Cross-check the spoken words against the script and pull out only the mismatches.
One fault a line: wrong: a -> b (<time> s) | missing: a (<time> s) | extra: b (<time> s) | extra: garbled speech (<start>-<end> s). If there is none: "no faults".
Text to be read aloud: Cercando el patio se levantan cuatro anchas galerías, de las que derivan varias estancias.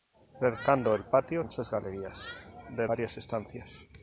missing: se levantan cuatro (1.4 s)
missing: las que derivan (2.9 s)